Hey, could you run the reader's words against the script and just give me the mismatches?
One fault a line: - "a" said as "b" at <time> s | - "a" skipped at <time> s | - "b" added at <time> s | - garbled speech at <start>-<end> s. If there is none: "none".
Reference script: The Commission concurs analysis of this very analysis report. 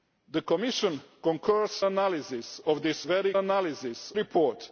none